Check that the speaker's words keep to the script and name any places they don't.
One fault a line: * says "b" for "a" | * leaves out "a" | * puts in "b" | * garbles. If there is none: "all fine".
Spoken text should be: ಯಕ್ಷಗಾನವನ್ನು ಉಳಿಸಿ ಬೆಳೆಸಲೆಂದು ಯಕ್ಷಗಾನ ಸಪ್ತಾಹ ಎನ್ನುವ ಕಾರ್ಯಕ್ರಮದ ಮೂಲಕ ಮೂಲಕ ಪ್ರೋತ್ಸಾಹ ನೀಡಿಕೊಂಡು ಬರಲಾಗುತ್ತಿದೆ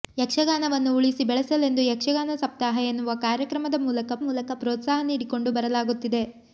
all fine